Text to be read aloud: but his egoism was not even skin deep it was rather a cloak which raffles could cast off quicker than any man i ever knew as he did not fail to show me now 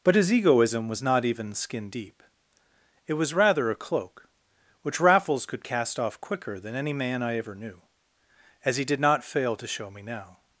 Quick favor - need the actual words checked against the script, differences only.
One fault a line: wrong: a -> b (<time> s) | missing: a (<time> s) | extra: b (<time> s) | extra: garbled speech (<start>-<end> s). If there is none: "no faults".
no faults